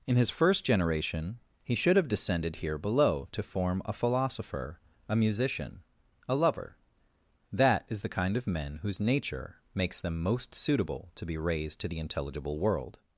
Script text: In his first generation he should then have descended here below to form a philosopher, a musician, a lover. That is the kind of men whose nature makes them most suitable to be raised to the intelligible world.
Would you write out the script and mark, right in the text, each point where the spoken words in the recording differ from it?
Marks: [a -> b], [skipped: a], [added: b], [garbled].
In his first generation he should [skipped: then] have descended here below to form a philosopher, a musician, a lover. That is the kind of men whose nature makes them most suitable to be raised to the intelligible world.